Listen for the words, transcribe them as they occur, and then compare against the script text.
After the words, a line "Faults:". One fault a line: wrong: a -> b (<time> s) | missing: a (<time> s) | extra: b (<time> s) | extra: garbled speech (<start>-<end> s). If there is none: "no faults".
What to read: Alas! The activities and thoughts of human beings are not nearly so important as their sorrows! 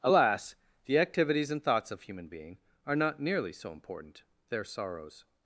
Alas! The activities and thoughts of human being are not nearly so important their sorrows!
Faults:
wrong: beings -> being (2.3 s)
missing: as (4.2 s)